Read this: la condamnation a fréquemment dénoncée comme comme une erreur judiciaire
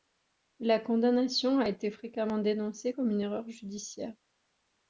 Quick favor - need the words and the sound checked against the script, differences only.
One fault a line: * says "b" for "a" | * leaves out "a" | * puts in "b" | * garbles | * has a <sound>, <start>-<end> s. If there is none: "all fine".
* puts in "été"
* leaves out "comme"